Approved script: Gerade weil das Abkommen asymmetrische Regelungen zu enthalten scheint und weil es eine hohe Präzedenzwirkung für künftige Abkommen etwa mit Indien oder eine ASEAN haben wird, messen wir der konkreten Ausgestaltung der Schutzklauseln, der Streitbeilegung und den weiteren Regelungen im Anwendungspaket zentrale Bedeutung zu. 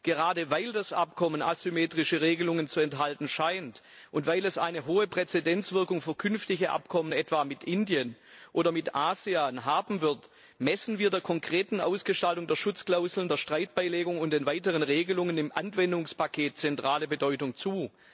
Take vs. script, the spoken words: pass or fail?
fail